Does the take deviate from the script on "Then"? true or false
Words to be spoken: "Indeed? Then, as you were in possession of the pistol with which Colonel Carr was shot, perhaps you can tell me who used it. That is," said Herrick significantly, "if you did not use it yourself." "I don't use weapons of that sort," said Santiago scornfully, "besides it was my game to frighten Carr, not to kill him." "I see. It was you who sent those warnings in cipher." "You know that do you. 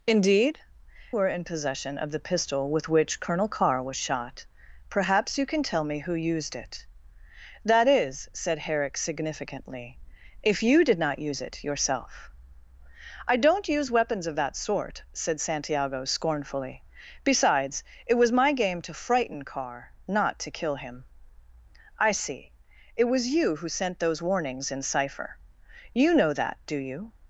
true